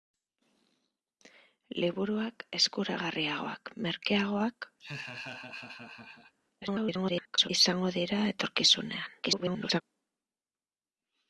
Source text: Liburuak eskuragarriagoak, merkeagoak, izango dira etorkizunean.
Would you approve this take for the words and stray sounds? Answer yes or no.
no